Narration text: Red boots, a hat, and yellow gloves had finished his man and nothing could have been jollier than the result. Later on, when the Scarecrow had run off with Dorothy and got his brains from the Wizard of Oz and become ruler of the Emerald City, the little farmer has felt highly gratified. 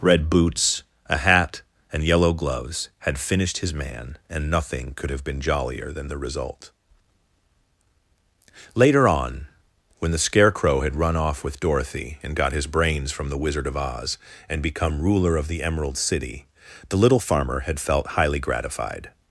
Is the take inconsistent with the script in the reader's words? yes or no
yes